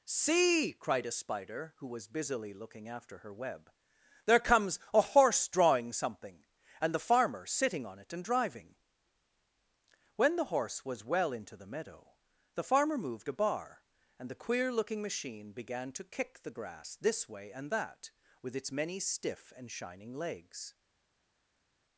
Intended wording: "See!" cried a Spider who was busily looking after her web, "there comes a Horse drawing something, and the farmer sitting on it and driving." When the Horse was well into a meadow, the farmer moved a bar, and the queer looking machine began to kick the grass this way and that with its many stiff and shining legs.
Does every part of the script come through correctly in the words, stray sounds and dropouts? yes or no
no